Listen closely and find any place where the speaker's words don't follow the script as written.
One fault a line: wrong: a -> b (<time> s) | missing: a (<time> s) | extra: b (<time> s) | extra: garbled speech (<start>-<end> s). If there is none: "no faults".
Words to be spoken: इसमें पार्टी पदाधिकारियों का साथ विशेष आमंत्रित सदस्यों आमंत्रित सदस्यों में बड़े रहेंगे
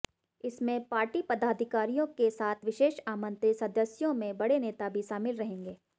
wrong: का -> के (2.2 s)
wrong: आमंत्रित सदस्यों में बड़े -> में बड़े नेता भी शामिल (4.1 s)